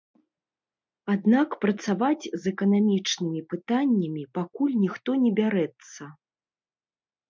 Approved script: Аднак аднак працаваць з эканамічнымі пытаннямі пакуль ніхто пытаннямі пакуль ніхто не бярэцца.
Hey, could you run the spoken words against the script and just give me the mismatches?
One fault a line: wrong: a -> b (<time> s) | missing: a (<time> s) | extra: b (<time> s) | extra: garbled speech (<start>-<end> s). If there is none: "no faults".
missing: аднак (1.5 s)
missing: пытаннямі пакуль ніхто (5.1 s)